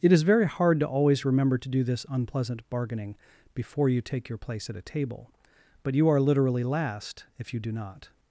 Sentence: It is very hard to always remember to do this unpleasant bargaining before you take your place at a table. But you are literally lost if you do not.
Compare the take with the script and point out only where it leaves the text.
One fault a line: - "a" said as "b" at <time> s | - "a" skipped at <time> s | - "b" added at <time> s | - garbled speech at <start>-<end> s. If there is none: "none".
- "lost" said as "last" at 6.6 s